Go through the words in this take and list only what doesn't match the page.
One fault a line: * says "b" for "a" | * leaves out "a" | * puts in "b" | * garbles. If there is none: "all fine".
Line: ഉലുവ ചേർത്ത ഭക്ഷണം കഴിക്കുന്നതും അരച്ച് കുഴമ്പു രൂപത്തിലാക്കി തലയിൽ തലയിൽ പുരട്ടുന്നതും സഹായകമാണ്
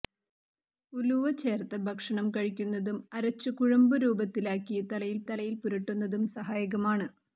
all fine